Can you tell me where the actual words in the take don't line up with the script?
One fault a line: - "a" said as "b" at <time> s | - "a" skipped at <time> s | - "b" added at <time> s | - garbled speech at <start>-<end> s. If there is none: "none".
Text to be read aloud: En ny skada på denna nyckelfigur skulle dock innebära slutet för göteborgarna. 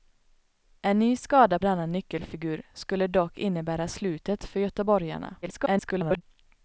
- "på" skipped at 1.6 s
- garbled speech at 5.4-6.2 s